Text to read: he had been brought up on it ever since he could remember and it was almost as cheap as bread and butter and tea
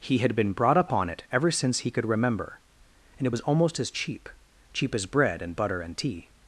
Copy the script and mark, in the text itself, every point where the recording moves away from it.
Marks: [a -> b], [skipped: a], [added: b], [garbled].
he had been brought up on it ever since he could remember and it was almost as cheap [added: cheap] as bread and butter and tea